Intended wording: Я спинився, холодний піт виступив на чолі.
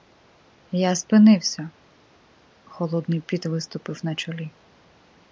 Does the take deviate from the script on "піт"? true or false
false